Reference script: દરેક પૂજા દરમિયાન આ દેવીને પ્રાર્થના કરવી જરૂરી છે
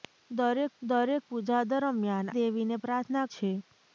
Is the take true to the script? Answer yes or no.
no